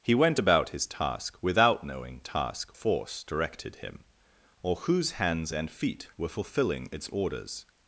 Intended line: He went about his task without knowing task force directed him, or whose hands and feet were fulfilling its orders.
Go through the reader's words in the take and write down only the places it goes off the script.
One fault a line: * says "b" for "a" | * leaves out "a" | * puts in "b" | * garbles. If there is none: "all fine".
all fine